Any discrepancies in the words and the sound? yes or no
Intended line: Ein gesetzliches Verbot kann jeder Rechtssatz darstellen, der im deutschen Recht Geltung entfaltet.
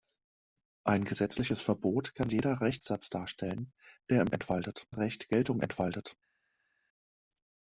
yes